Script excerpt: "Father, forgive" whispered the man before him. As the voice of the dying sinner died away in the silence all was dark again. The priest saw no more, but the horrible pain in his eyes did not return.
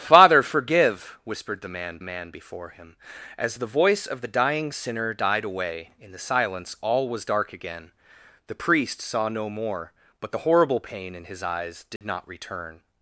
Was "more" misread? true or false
false